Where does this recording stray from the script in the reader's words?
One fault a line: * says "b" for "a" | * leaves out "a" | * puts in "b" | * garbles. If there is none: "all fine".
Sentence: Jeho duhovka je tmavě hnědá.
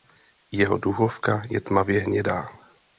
all fine